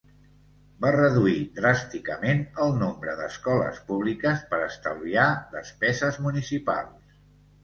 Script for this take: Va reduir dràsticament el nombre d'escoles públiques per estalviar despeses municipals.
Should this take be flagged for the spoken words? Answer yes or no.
no